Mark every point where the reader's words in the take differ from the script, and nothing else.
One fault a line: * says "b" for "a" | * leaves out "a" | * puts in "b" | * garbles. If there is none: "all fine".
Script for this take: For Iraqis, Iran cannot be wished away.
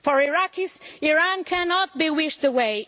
all fine